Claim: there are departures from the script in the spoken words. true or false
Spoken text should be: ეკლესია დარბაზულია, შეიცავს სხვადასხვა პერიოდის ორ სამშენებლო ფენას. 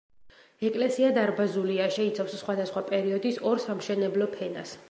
false